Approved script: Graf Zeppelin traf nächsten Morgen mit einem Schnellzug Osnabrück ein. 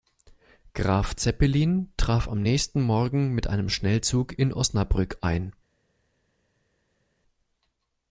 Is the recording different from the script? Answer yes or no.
yes